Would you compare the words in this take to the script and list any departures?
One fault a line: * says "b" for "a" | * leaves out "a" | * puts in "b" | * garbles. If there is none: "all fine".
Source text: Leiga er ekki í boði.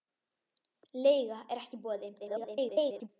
* garbles